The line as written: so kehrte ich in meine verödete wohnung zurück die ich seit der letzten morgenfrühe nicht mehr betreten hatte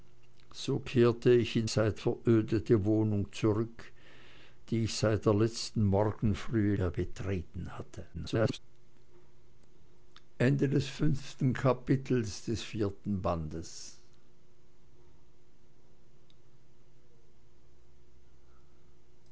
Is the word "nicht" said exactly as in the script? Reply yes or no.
no